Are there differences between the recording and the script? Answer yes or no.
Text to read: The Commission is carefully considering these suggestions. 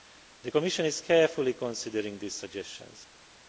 no